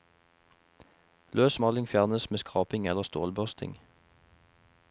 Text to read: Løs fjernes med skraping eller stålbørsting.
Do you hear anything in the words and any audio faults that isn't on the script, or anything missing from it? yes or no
yes